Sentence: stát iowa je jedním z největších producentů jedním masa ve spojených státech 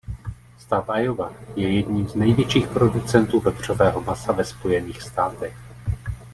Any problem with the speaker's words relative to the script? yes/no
yes